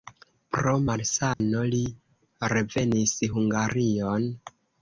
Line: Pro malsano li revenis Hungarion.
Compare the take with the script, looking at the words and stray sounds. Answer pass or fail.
fail